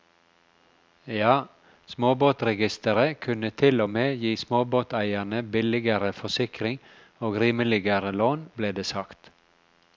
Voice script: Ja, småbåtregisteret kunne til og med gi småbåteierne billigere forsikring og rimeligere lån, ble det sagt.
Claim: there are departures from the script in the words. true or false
false